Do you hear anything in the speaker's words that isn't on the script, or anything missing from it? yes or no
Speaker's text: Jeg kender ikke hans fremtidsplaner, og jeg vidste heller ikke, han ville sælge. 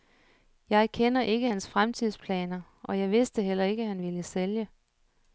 no